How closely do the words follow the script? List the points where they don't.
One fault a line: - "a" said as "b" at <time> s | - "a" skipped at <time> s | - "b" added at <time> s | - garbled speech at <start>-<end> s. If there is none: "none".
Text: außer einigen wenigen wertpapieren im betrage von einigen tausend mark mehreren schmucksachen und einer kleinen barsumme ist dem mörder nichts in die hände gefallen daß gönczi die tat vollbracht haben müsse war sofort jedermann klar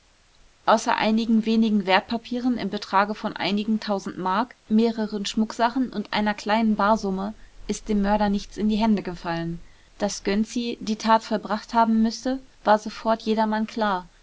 none